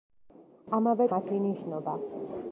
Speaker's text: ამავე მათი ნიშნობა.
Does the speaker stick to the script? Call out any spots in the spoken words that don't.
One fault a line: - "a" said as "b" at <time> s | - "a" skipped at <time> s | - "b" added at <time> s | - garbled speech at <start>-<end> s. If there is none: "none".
none